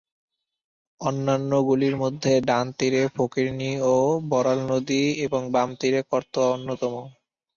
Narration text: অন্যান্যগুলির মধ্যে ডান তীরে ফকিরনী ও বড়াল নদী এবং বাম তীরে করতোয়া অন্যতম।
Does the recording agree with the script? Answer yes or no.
yes